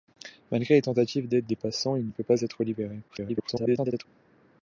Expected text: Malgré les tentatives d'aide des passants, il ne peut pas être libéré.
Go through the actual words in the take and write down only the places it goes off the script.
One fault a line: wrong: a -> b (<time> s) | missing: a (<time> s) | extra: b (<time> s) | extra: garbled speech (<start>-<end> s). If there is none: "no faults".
extra: garbled speech (3.1-4.0 s)